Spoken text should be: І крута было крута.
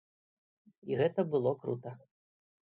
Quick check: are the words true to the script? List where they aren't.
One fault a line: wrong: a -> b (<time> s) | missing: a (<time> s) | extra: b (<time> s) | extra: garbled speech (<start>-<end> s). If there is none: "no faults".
wrong: крута -> гэта (1.0 s)